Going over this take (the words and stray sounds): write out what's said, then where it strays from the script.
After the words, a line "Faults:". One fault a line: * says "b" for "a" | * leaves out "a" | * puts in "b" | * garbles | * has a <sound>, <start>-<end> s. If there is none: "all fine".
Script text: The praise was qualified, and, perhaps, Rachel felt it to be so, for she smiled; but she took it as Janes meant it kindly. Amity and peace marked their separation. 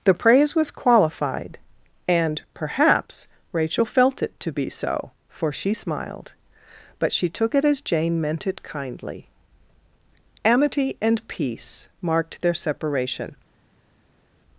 The praise was qualified, and, perhaps, Rachel felt it to be so, for she smiled; but she took it as Jane meant it kindly. Amity and peace marked their separation.
Faults:
* says "Jane" for "Janes"